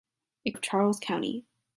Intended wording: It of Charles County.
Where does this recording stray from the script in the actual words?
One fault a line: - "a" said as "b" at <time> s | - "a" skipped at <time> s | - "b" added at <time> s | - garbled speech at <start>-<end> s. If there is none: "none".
none